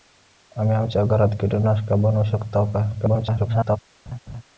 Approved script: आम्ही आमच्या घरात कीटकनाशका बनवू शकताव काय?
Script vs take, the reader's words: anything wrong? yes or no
yes